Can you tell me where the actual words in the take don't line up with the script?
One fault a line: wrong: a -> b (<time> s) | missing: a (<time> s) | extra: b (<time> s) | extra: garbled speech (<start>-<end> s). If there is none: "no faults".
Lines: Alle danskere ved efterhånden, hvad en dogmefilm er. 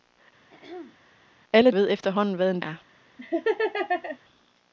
missing: danskere (1.7 s)
missing: dogmefilm (2.6 s)